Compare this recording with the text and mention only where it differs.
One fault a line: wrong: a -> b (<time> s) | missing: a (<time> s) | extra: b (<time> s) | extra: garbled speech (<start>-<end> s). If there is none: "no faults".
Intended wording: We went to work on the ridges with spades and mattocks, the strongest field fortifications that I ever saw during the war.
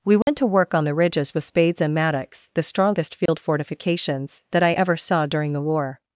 no faults